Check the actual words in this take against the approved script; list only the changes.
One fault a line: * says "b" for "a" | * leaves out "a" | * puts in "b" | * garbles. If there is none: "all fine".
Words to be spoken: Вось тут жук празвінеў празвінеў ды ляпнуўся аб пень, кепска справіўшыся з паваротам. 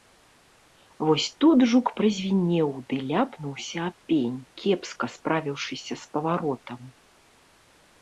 * leaves out "празвінеў"